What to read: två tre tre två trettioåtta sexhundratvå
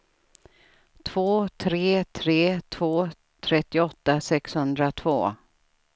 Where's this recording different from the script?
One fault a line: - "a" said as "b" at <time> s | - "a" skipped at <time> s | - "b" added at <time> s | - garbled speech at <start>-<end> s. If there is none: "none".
none